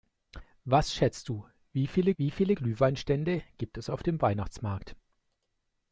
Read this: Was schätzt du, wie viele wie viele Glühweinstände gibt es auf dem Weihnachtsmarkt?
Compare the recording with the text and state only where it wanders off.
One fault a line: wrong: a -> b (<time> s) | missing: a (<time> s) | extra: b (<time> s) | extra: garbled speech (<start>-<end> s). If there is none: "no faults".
no faults